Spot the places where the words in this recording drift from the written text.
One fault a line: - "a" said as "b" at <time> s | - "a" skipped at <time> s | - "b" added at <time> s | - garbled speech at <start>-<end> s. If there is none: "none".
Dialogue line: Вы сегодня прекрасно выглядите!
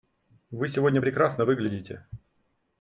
none